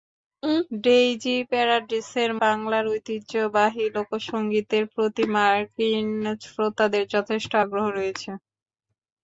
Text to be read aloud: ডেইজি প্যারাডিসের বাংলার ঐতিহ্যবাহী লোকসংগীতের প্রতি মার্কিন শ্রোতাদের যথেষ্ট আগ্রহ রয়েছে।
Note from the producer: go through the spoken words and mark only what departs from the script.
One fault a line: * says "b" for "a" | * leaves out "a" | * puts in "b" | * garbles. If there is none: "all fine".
all fine